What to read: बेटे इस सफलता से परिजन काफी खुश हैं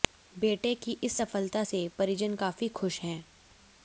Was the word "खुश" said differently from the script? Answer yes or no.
no